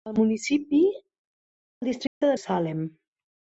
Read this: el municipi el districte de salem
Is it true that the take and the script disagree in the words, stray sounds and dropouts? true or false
true